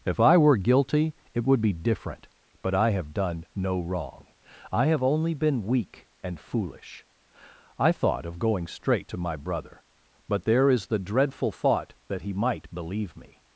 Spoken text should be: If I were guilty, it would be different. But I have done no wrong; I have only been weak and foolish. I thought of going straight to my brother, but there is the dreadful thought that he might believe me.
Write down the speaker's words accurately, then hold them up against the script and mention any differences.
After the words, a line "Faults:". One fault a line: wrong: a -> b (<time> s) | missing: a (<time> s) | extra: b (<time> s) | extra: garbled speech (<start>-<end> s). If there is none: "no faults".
If I were guilty, it would be different. But I have done no wrong; I have only been weak and foolish. I thought of going straight to my brother, but there is the dreadful thought that he might believe me.
Faults:
no faults